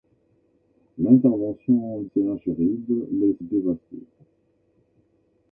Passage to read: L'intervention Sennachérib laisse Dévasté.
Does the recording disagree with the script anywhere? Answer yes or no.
no